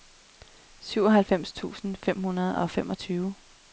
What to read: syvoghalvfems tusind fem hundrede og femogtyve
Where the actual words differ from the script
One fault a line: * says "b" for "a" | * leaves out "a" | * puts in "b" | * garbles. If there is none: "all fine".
all fine